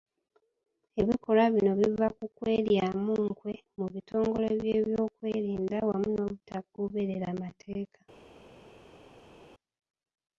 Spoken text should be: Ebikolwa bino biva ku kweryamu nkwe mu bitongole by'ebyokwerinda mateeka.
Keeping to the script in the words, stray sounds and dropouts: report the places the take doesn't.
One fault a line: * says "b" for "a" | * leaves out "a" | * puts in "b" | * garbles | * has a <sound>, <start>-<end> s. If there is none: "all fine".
* puts in "wamu n'obutagoberera"